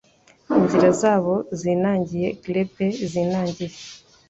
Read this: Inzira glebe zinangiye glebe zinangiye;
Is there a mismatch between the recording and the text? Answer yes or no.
yes